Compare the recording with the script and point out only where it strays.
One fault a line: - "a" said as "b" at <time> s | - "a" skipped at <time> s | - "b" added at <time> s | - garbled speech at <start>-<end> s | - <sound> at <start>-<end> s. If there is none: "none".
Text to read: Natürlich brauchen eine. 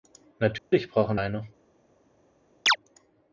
- dropout at 0.6-0.7 s
- chirp at 2.7-2.8 s